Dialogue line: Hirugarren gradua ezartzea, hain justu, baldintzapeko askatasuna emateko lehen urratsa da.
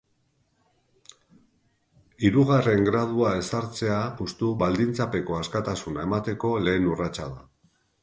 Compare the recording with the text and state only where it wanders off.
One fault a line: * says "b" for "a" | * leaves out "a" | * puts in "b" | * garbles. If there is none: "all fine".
* leaves out "hain"